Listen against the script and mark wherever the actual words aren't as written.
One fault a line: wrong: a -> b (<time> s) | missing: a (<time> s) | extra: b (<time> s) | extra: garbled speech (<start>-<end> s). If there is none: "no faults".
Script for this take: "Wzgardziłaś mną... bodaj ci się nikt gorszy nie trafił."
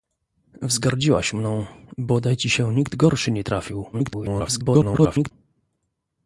extra: garbled speech (3.9-5.3 s)